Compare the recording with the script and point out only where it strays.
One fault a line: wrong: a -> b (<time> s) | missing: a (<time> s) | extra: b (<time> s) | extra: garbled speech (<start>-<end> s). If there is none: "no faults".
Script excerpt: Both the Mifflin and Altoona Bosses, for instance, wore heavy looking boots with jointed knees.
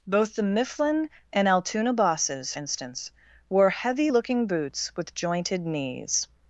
missing: for (2.5 s)